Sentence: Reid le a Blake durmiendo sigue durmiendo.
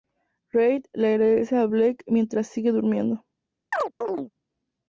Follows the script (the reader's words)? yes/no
no